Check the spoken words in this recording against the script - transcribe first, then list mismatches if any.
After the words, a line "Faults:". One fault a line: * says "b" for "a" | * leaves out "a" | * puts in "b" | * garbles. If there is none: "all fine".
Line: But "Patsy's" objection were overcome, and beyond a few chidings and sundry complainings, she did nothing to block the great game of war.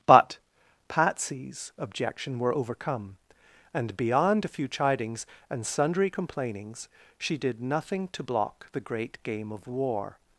But "Patsy's" objection were overcome, and beyond a few chidings and sundry complainings, she did nothing to block the great game of war.
Faults:
all fine